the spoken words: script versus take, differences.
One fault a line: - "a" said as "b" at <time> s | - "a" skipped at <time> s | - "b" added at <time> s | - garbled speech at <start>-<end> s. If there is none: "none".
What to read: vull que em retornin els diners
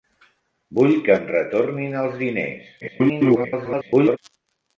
- garbled speech at 2.8-4.2 s